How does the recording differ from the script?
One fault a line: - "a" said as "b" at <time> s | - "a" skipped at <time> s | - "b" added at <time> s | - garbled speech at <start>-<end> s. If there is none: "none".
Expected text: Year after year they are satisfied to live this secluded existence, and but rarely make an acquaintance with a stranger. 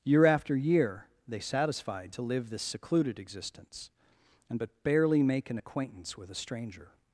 - "are" skipped at 1.4 s
- "rarely" said as "barely" at 4.8 s